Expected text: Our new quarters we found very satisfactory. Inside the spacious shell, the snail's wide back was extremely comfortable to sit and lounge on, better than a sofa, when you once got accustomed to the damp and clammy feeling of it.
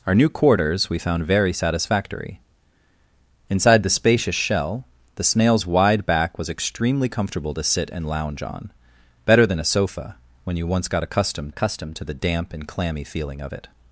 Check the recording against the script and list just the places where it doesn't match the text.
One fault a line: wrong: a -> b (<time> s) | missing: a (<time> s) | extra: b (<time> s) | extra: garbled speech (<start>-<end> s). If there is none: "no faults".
extra: accustomed (11.5 s)